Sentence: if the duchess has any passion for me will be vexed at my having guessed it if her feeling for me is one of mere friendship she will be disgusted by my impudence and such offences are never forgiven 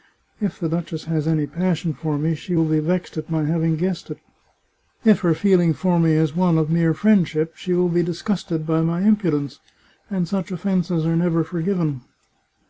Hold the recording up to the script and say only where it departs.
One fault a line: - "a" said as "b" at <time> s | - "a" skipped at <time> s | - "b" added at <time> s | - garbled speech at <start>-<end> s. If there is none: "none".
- "she" added at 2.3 s